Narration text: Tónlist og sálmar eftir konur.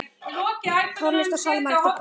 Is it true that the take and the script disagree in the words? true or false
false